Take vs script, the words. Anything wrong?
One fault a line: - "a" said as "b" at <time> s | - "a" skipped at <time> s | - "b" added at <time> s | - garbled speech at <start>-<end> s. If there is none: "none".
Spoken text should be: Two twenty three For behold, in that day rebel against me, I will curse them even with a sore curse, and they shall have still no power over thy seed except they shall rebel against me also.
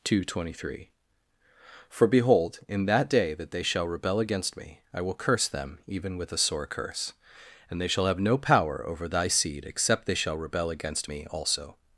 - "that they shall" added at 3.3 s
- "still" skipped at 8.2 s